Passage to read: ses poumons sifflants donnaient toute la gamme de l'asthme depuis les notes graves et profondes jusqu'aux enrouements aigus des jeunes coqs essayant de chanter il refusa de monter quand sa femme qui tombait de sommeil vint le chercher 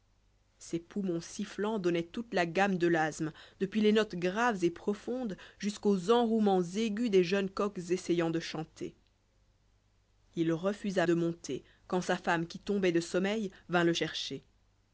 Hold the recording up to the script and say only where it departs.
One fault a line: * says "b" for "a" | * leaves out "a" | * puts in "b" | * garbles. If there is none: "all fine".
all fine